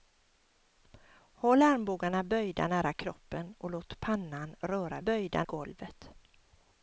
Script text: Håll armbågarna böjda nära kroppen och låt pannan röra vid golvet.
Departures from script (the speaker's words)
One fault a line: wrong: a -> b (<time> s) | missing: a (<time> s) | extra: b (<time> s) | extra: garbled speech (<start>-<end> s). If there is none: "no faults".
wrong: vid -> böjda (5.0 s)